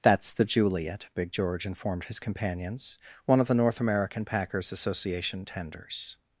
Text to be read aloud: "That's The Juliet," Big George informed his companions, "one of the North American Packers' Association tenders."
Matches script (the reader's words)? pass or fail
pass